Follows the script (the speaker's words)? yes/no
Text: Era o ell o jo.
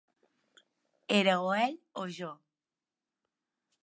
yes